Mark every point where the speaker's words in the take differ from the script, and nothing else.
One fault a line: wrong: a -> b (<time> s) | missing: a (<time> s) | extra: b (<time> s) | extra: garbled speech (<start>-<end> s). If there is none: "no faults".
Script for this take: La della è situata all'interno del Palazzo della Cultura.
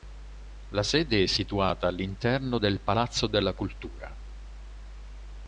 wrong: della -> sede (0.8 s)